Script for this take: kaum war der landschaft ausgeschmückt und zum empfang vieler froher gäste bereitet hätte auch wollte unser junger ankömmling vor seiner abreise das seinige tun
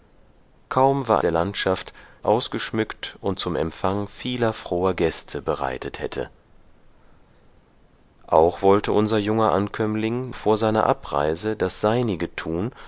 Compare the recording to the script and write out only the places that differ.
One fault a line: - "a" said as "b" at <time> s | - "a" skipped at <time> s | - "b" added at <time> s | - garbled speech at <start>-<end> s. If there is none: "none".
none